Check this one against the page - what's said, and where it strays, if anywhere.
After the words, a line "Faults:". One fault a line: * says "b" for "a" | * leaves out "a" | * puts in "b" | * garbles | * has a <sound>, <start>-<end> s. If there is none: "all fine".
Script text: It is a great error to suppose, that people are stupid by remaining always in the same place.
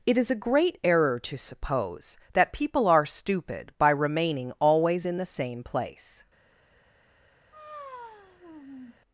It is a great error to suppose, that people are stupid by remaining always in the same place.
Faults:
* has a sigh, 7.5-9.0 s